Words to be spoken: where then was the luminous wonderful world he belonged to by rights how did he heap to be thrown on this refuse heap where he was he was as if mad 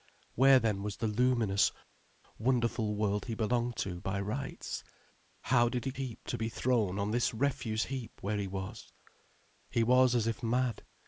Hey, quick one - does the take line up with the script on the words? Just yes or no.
yes